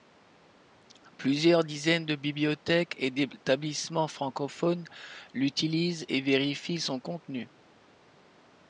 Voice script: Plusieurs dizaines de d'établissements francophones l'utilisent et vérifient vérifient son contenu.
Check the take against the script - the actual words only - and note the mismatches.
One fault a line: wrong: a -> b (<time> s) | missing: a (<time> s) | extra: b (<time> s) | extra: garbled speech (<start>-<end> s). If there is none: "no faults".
extra: bibliothèques et (2.1 s)
missing: vérifient (6.8 s)